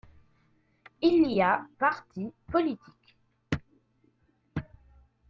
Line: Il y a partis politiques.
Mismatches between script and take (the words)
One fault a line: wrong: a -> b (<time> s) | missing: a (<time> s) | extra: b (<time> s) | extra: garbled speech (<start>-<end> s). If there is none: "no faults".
no faults